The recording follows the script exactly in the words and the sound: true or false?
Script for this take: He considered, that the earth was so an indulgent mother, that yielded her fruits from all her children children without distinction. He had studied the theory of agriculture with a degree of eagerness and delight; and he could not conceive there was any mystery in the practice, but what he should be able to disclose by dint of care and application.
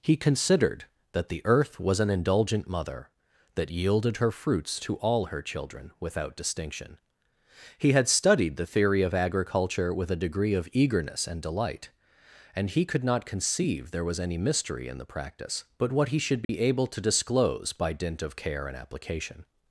false